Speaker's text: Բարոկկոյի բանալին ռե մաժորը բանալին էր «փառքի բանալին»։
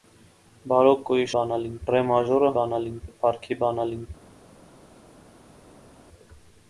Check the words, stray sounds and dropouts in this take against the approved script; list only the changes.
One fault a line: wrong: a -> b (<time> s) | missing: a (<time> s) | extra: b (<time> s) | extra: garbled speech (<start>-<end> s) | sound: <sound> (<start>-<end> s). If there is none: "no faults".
no faults